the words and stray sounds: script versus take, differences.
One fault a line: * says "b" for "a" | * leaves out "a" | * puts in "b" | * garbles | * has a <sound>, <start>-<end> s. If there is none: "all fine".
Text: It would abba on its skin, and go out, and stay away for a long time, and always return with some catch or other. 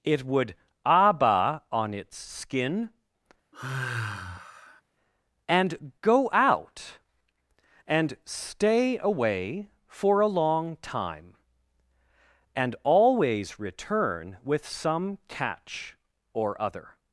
* has a sigh, 3.5-4.8 s